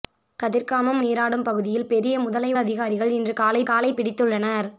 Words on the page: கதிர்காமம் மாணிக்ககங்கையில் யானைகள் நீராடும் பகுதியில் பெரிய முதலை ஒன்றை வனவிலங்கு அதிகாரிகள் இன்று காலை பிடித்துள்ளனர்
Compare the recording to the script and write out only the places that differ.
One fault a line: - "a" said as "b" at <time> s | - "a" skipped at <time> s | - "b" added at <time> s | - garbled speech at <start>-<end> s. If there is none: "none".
- "மாணிக்ககங்கையில் யானைகள்" skipped at 1.0 s
- "ஒன்றை வனவிலங்கு" skipped at 2.5 s
- "காலை" added at 3.7 s